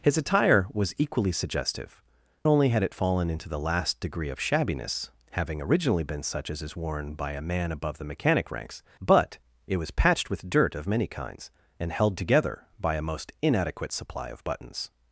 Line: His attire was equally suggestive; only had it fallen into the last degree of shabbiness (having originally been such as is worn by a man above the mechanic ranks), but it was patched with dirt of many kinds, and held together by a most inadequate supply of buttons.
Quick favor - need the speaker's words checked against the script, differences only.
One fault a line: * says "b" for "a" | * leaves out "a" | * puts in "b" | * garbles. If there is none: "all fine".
all fine